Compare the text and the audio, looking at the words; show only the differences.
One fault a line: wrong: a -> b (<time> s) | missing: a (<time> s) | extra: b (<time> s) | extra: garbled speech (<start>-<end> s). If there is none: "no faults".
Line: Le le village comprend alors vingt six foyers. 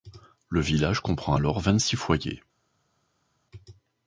missing: le (0.6 s)